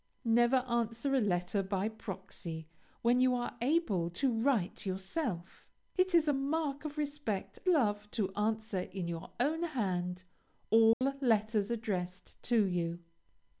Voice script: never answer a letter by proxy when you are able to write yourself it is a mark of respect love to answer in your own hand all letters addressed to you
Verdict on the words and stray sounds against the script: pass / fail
fail